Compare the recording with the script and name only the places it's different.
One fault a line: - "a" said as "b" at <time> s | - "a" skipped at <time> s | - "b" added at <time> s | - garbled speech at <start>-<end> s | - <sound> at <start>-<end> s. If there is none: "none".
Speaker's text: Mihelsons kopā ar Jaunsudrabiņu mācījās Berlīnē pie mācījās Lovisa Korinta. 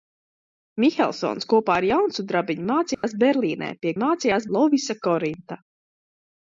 - dropout at 2.9-3.0 s